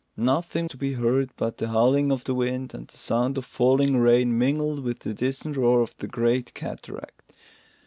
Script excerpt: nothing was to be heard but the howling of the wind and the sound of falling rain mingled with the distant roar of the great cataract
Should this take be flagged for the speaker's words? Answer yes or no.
yes